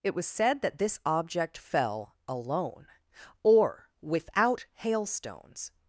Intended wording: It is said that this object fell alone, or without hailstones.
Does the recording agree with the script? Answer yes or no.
no